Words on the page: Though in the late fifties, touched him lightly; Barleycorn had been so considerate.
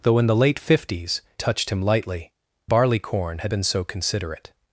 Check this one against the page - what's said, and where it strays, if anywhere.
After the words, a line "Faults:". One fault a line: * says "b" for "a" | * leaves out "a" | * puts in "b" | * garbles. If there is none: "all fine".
Though in the late fifties, touched him lightly; Barleycorn had been so considerate.
Faults:
all fine